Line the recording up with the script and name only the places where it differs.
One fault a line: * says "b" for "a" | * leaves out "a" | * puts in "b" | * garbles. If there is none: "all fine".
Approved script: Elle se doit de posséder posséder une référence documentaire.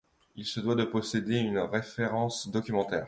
* says "Il" for "Elle"
* leaves out "posséder"